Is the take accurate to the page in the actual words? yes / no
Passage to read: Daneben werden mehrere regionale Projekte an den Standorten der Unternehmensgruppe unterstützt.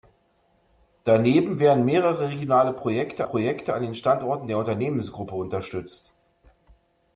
no